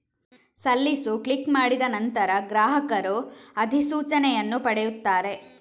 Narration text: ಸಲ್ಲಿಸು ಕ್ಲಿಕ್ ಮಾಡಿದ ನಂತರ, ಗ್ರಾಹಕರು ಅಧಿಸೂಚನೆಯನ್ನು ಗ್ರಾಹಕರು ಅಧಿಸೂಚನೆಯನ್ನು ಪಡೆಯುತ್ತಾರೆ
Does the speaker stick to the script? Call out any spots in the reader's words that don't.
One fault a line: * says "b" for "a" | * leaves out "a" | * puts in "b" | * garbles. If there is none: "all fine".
* leaves out "ಗ್ರಾಹಕರು ಅಧಿಸೂಚನೆಯನ್ನು"